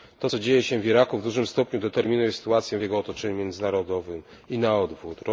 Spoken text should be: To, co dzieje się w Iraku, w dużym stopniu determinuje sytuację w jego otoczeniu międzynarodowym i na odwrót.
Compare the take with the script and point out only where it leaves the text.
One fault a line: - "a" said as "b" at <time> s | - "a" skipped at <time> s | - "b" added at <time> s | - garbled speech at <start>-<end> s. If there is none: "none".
none